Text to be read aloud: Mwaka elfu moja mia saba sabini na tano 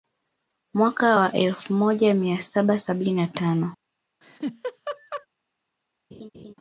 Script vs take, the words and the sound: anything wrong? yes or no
yes